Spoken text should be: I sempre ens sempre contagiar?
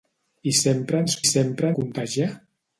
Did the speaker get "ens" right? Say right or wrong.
right